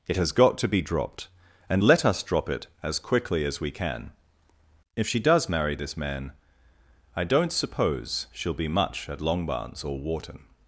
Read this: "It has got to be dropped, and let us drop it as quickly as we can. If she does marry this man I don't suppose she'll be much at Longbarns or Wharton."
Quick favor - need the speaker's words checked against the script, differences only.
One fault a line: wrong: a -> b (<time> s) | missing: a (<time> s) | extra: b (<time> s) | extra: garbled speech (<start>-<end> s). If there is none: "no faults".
no faults